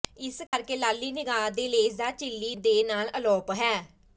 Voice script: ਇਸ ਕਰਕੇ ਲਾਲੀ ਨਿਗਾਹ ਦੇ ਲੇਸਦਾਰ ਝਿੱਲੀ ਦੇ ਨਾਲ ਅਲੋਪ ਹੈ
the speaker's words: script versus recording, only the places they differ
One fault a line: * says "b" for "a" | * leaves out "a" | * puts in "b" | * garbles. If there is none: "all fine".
all fine